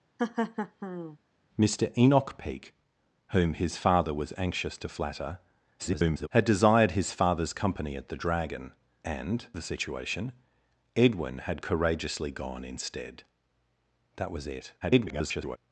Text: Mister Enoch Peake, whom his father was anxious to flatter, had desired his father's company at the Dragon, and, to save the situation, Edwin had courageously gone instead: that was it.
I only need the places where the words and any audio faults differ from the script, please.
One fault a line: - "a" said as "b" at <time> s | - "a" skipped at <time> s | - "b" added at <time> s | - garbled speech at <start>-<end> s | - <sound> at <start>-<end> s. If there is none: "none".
- laugh at 0.2-1.2 s
- garbled speech at 5.8-6.3 s
- "to save" skipped at 9.5 s
- garbled speech at 14.8-15.6 s